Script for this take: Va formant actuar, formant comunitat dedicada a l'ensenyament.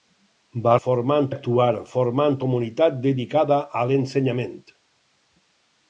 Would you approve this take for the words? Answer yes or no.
yes